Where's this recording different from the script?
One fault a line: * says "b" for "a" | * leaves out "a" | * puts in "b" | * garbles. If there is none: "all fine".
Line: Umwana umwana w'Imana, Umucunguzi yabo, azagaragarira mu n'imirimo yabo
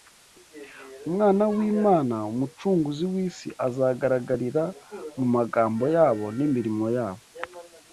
* leaves out "umwana"
* says "w'isi" for "yabo"
* puts in "magambo yabo"